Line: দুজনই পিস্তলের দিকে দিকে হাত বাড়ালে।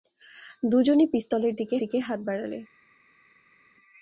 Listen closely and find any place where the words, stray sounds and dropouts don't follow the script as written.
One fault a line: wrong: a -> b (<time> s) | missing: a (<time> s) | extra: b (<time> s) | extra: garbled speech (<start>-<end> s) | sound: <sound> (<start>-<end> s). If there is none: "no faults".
no faults